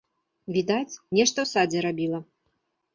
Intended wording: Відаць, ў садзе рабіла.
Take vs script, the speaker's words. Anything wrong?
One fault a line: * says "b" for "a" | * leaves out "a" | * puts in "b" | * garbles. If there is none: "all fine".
* puts in "нешта"